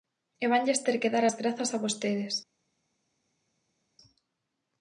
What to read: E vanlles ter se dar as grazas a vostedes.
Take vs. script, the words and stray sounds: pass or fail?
fail